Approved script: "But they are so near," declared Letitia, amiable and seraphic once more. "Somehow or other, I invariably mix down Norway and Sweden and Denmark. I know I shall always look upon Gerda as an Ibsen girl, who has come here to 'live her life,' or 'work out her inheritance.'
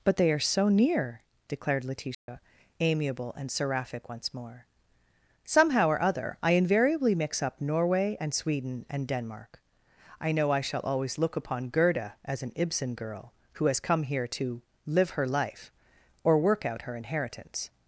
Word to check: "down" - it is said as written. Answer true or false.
false